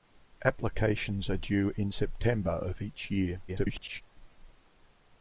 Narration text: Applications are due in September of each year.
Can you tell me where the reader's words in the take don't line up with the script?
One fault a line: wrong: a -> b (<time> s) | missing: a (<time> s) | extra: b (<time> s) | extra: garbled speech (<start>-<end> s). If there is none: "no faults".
extra: garbled speech (3.5-4.0 s)